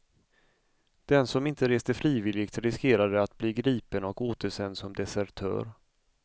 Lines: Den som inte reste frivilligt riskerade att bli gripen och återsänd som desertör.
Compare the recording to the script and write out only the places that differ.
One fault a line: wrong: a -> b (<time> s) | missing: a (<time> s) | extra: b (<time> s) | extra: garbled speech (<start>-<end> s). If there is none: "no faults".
no faults